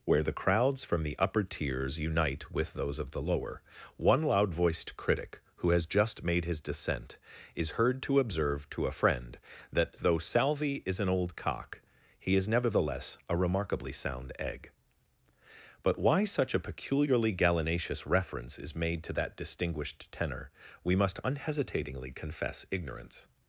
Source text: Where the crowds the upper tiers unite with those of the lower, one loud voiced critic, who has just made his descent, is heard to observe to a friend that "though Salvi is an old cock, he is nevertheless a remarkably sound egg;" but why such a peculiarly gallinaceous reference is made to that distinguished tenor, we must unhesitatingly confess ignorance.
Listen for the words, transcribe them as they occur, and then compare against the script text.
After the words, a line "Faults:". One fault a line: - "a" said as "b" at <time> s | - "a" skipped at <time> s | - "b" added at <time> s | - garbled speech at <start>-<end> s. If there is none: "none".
Where the crowds from the upper tiers unite with those of the lower, one loud voiced critic, who has just made his descent, is heard to observe to a friend that "though Salvi is an old cock, he is nevertheless a remarkably sound egg;" but why such a peculiarly gallinaceous reference is made to that distinguished tenor, we must unhesitatingly confess ignorance.
Faults:
- "from" added at 0.8 s